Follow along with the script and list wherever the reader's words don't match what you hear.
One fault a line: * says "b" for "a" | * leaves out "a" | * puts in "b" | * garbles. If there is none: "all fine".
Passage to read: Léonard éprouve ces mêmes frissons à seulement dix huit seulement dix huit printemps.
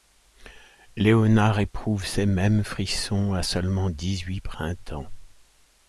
* leaves out "seulement dix huit"